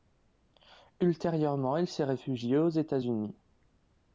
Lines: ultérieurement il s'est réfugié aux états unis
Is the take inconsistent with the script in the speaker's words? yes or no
no